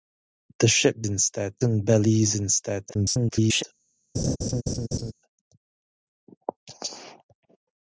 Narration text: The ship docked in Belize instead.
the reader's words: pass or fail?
fail